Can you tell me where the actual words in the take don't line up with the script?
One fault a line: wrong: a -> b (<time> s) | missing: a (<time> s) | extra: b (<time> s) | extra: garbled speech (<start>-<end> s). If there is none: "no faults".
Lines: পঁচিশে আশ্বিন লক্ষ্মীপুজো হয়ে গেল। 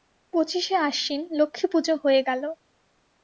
no faults